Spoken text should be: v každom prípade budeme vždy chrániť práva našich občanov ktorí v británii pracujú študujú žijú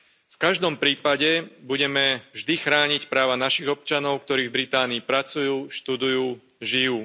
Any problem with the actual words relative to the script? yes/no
no